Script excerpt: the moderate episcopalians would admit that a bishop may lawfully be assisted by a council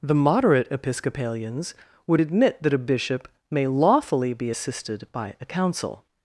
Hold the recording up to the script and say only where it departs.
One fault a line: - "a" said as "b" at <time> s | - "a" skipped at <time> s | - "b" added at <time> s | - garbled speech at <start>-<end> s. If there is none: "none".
none